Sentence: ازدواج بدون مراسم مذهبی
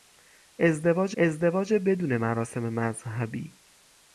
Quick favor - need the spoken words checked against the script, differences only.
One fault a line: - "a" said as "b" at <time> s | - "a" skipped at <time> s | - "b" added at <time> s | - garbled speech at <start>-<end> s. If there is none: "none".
- "ازدواج" added at 1.2 s